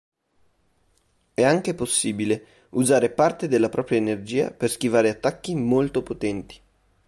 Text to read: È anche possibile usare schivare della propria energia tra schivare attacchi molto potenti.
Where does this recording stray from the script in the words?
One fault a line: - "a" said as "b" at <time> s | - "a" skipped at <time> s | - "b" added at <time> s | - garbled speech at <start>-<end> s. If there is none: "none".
- "schivare" said as "parte" at 3.1 s
- "tra" said as "per" at 4.5 s